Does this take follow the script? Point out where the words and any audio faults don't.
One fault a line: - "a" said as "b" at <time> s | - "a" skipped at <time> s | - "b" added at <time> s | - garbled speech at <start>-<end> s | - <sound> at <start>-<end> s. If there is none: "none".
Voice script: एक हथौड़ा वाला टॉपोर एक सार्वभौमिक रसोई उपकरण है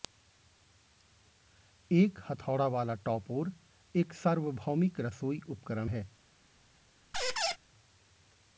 - squeak at 7.1-7.6 s